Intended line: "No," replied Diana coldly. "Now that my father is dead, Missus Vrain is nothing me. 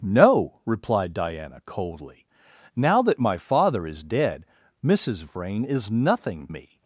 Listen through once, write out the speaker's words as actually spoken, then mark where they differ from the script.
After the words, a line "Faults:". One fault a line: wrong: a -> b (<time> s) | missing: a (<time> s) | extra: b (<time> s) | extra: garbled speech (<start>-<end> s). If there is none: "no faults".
"No," replied Diana coldly. "Now that my father is dead, Missus Vrain is nothing me.
Faults:
no faults